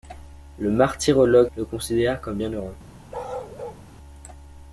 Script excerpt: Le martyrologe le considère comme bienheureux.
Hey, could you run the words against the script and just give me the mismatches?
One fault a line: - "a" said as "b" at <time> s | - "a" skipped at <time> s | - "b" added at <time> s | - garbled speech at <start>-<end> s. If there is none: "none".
none